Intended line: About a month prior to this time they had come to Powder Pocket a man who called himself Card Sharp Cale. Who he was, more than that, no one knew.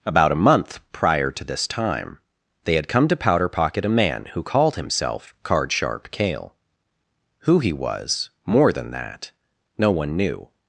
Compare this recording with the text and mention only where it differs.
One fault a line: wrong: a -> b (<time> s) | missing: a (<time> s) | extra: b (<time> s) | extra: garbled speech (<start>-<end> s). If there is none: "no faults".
no faults